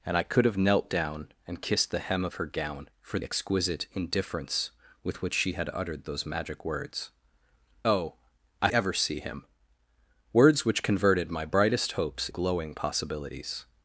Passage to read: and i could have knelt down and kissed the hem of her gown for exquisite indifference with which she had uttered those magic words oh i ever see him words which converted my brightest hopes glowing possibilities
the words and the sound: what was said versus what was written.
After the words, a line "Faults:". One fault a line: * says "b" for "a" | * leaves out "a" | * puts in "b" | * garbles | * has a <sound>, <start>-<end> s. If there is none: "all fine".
and i could have knelt down and kissed the hem of her gown for exquisite indifference with which she had uttered those magic words oh i ever see him words which converted my brightest hopes glowing possibilities
Faults:
all fine